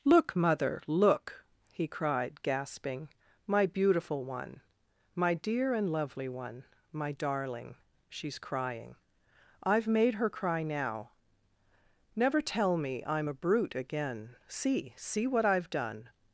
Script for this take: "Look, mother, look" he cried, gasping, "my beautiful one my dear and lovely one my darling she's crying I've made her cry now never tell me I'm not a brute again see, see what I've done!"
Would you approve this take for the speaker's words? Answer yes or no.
no